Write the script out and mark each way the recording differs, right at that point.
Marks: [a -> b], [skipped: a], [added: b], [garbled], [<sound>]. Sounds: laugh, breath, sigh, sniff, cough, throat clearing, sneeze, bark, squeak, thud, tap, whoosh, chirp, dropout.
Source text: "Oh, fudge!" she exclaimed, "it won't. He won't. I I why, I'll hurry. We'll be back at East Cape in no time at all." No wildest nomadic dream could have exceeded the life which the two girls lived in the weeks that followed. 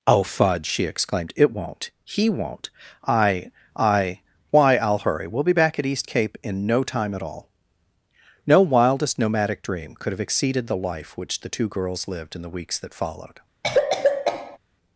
"Oh, fudge!" she exclaimed, "it won't. He won't. I I why, I'll hurry. We'll be back at East Cape in no time at all." No wildest nomadic dream could have exceeded the life which the two girls lived in the weeks that followed. [cough]